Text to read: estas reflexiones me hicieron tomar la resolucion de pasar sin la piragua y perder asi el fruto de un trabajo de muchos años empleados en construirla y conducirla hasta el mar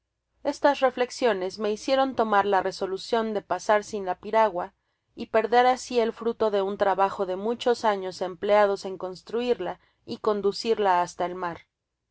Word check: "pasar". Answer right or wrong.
right